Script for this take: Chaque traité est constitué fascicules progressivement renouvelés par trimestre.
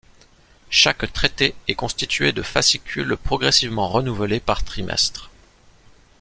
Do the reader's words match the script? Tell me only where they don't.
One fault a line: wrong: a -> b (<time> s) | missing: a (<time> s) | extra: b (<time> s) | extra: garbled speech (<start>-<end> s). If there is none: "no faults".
extra: de (2.3 s)